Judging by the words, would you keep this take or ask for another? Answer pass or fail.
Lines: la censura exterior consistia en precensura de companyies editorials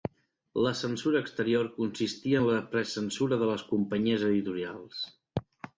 fail